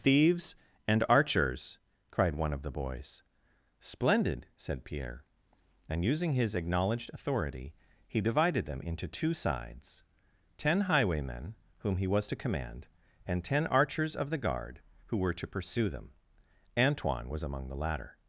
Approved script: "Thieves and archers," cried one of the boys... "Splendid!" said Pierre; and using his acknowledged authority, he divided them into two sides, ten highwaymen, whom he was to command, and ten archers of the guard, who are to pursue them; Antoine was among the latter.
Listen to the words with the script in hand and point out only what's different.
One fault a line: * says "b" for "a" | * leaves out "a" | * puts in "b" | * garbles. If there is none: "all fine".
* says "were" for "are"